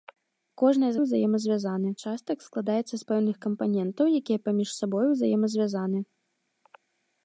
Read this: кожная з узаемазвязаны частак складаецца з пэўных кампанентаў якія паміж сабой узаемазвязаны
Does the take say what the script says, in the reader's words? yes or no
yes